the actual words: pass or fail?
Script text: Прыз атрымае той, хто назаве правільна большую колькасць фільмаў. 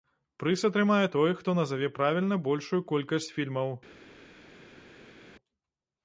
pass